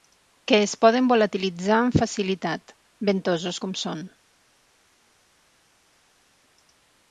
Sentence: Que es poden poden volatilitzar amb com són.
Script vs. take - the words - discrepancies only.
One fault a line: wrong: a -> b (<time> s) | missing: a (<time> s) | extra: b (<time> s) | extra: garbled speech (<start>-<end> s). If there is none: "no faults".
missing: poden (1.1 s)
extra: facilitat ventosos (2.0 s)